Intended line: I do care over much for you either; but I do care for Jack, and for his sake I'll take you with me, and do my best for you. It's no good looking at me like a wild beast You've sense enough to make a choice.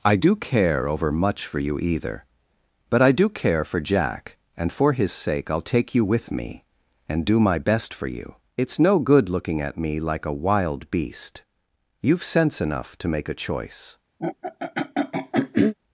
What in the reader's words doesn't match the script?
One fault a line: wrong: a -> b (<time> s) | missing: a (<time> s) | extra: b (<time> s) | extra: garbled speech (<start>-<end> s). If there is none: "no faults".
no faults